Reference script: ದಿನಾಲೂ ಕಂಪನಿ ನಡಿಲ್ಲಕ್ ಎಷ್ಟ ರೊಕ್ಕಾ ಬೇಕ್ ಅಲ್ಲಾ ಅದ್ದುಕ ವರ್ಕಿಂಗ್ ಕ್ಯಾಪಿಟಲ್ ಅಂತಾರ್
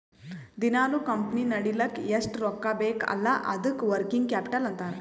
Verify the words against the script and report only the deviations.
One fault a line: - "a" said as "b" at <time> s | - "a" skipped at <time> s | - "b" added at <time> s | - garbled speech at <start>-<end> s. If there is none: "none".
none